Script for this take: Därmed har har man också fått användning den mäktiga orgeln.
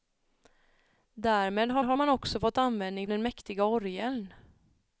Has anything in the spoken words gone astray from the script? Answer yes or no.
no